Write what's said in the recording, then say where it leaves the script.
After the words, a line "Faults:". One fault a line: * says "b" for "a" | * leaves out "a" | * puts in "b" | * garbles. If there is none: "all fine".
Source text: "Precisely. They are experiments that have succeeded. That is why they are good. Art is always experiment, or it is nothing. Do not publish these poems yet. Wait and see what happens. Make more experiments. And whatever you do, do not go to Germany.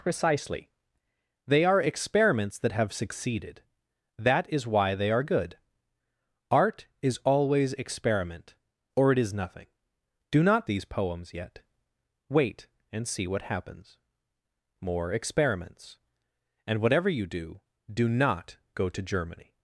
"Precisely. They are experiments that have succeeded. That is why they are good. Art is always experiment, or it is nothing. Do not these poems yet. Wait and see what happens. More experiments. And whatever you do, do not go to Germany.
Faults:
* leaves out "publish"
* leaves out "Make"